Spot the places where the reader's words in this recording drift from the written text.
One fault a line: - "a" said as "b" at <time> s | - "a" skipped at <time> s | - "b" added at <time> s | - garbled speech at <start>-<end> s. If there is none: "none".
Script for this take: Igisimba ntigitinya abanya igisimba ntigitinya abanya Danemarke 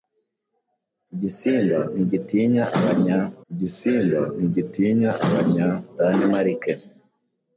none